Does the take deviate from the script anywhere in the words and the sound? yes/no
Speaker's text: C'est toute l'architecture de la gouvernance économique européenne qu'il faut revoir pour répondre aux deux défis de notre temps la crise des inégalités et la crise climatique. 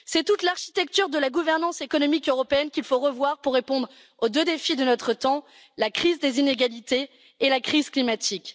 no